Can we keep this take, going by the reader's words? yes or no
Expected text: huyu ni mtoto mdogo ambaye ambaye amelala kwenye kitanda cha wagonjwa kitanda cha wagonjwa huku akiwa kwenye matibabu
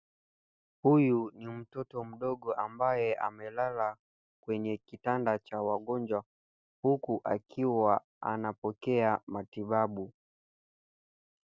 no